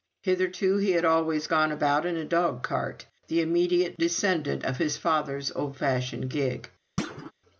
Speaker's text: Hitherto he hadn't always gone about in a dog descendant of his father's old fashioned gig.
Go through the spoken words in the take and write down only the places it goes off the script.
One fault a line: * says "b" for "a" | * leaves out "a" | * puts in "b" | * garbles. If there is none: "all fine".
* says "had" for "hadn't"
* puts in "cart the immediate"